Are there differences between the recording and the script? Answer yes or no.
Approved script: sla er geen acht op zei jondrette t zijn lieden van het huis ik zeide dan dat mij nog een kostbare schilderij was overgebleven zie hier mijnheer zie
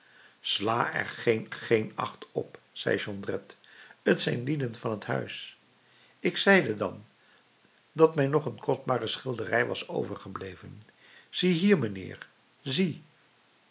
yes